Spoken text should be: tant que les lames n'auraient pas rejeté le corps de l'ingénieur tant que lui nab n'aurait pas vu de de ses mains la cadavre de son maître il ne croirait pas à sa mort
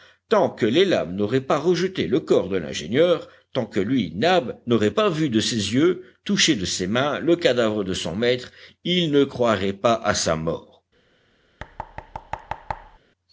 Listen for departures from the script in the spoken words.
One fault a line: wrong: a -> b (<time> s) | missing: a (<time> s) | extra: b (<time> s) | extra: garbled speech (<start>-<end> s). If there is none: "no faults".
extra: ses yeux touché (5.4 s)
wrong: la -> le (7.2 s)